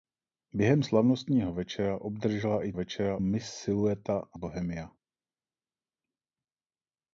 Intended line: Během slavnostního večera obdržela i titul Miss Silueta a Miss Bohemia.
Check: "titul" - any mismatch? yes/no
yes